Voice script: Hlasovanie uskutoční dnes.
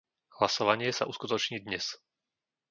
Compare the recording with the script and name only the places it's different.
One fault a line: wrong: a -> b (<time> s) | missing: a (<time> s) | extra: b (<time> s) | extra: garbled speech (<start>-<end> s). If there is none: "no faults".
extra: sa (0.9 s)